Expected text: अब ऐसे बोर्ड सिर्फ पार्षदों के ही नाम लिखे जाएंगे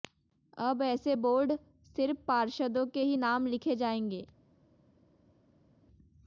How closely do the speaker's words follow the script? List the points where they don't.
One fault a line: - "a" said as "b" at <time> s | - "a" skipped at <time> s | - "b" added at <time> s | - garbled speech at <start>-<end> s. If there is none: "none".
none